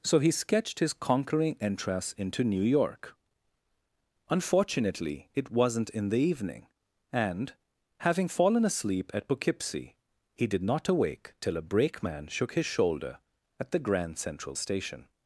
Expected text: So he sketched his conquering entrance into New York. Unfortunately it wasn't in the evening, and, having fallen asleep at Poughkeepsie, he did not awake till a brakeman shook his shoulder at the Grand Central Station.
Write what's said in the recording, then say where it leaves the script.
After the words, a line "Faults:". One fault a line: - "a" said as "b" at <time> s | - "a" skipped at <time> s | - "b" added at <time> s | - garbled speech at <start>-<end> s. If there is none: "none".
So he sketched his conquering entrance into New York. Unfortunately it wasn't in the evening, and, having fallen asleep at Poughkeepsie, he did not awake till a brakeman shook his shoulder at the Grand Central Station.
Faults:
none